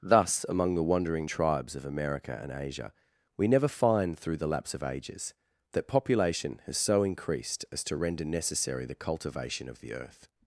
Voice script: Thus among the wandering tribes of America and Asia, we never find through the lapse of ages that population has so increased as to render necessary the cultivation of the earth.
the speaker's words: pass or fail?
pass